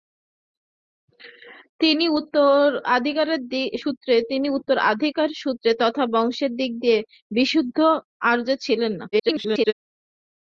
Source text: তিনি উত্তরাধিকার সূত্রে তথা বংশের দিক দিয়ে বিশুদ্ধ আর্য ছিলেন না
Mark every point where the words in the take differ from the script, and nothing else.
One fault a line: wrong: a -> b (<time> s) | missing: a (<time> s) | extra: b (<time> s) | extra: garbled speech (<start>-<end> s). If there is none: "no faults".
extra: garbled speech (9.1-9.7 s)